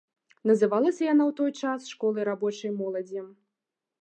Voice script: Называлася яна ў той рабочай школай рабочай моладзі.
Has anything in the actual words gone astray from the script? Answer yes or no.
yes